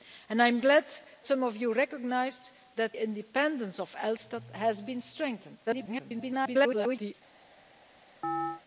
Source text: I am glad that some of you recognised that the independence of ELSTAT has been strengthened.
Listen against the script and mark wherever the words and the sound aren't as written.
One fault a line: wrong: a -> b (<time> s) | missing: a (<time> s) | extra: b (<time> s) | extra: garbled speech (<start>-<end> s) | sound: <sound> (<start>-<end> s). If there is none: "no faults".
missing: that (0.8 s)
missing: the (3.0 s)
extra: garbled speech (5.7-7.1 s)
sound: chirp (8.2-8.6 s)